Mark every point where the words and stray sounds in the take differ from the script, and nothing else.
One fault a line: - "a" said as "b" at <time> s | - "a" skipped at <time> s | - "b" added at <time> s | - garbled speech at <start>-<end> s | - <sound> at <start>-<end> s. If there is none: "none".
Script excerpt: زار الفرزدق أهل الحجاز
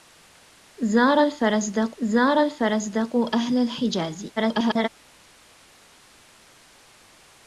- "زار الفرزدق" added at 2.0 s
- garbled speech at 4.4-4.9 s